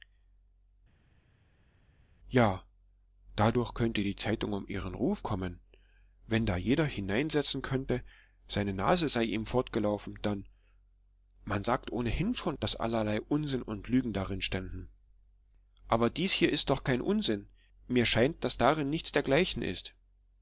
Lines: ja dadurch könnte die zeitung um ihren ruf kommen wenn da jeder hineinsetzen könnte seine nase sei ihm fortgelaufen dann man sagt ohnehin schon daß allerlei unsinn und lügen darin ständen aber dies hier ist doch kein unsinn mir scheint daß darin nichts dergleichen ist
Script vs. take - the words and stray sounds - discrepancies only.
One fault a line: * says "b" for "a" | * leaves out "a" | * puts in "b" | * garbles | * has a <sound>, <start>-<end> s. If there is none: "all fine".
all fine